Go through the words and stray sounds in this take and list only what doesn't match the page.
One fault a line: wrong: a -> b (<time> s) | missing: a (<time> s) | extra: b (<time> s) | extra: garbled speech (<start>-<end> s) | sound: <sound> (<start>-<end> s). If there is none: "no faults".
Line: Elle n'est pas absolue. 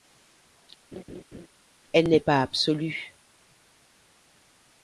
sound: laugh (0.9-1.5 s)